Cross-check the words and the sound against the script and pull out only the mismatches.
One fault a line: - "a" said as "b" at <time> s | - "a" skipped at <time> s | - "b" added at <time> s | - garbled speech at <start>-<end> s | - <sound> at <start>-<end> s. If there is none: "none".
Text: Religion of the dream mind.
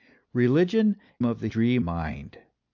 none